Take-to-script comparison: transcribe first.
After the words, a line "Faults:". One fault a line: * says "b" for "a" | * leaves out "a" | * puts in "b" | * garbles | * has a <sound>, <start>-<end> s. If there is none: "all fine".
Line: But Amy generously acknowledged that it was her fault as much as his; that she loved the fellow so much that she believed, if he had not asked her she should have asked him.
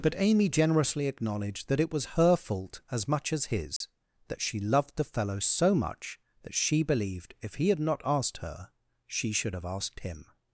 But Amy generously acknowledged that it was her fault as much as his; that she loved the fellow so much that she believed, if he had not asked her she should have asked him.
Faults:
* has a dropout, 3.8-3.8 s